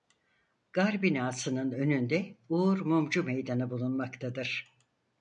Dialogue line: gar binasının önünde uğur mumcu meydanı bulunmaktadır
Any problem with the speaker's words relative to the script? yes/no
no